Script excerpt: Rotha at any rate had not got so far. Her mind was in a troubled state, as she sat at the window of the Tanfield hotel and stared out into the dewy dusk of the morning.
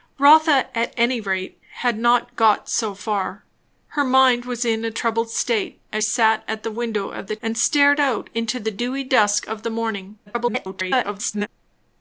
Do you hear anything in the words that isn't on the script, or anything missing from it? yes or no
yes